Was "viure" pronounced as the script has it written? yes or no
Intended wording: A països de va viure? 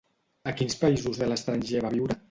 yes